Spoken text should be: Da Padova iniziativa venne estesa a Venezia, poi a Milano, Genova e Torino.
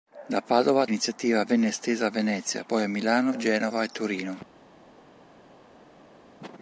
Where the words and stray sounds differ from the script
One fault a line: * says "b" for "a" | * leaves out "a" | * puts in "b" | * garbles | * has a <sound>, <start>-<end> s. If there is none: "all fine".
all fine